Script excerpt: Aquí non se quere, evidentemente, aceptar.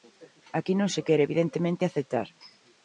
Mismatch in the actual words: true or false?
false